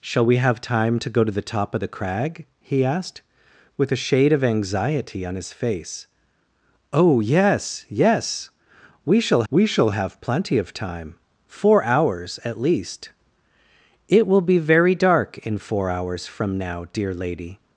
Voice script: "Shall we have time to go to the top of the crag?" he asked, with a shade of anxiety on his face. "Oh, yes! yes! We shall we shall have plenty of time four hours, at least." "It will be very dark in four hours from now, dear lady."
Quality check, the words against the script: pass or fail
pass